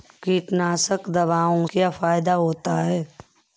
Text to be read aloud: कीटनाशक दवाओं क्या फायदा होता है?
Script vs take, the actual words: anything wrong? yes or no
no